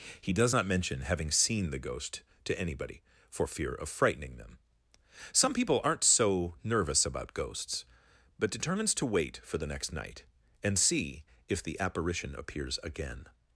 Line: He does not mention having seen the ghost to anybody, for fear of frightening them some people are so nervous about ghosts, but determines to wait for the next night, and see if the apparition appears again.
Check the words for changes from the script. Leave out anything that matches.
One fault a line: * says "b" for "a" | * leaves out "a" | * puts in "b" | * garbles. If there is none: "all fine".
* says "aren't" for "are"